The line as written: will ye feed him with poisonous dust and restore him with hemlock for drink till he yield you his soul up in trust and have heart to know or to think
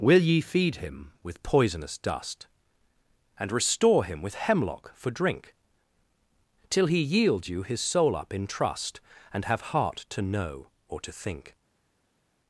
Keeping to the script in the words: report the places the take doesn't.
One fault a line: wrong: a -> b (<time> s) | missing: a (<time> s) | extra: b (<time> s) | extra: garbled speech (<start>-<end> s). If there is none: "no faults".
no faults